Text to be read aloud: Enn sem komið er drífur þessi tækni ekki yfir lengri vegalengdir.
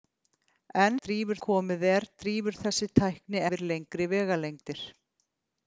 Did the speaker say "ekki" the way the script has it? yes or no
no